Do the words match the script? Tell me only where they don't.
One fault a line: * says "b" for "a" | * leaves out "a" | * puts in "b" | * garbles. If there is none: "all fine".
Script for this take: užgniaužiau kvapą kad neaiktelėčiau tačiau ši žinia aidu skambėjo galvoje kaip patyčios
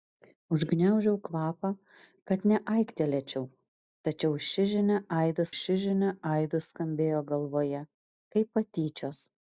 * puts in "ši žinia aidu"